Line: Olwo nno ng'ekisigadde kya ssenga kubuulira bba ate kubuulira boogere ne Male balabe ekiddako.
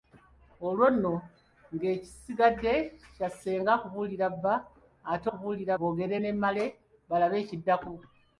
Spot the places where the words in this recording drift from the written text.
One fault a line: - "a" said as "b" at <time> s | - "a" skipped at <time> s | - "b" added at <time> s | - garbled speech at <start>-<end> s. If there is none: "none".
none